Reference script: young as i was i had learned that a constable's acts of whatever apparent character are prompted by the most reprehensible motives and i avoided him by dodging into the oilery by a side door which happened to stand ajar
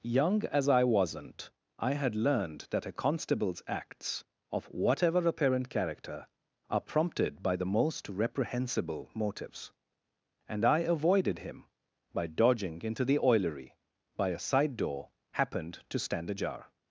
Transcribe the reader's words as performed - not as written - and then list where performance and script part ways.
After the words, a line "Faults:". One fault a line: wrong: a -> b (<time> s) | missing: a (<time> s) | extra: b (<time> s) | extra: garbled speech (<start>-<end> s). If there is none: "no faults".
young as i wasn't i had learned that a constable's acts of whatever apparent character are prompted by the most reprehensible motives and i avoided him by dodging into the oilery by a side door happened to stand ajar
Faults:
wrong: was -> wasn't (0.8 s)
missing: which (15.1 s)